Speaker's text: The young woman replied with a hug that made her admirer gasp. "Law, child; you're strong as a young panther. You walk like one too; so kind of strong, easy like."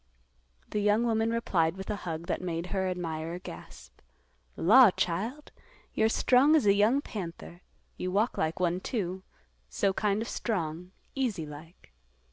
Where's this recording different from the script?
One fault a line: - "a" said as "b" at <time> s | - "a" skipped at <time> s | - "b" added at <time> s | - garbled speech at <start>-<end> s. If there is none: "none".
none